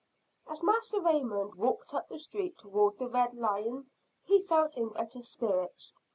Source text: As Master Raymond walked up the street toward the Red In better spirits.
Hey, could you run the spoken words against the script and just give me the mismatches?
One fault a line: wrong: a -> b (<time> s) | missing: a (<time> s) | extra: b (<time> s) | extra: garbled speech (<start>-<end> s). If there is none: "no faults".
extra: Lion he felt (3.3 s)